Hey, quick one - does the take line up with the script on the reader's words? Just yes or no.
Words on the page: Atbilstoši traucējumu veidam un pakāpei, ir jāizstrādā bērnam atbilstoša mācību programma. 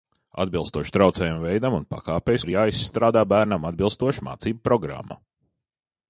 yes